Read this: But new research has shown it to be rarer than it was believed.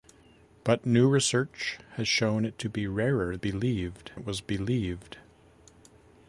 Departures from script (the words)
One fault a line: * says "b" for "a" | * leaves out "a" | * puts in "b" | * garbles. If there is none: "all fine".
* says "believed" for "than"